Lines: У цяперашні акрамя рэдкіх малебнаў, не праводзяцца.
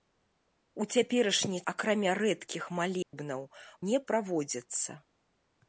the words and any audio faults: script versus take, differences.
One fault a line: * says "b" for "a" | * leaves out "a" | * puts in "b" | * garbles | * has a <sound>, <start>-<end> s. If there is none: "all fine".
* has a dropout, 3.0-3.1 s